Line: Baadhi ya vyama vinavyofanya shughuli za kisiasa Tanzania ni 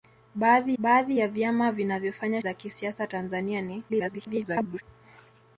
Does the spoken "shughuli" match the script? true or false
false